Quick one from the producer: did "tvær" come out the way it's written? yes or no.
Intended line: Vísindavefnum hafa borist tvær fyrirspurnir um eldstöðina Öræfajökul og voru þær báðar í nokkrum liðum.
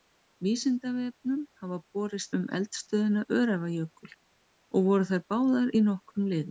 no